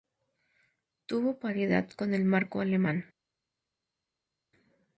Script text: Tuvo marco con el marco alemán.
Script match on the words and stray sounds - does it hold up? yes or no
no